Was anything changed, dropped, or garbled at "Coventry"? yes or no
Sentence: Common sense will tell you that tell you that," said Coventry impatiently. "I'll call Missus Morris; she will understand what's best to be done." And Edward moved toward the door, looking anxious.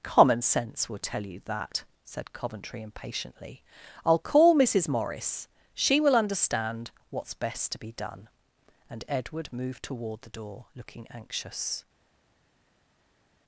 no